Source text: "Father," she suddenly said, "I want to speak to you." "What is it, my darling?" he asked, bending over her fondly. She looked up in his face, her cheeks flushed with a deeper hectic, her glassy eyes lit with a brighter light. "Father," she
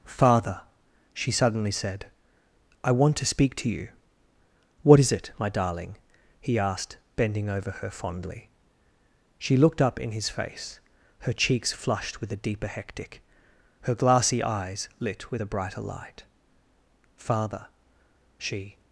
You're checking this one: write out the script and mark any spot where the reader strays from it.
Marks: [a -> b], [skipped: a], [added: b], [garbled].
"Father," she suddenly said, "I want to speak to you." "What is it, my darling?" he asked, bending over her fondly. She looked up in his face, her cheeks flushed with a deeper hectic, her glassy eyes lit with a brighter light. "Father," she